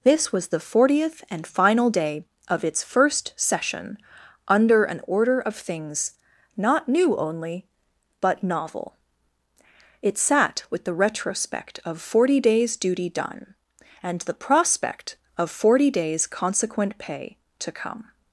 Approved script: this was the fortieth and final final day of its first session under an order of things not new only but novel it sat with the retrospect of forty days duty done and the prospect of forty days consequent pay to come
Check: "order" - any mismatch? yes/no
no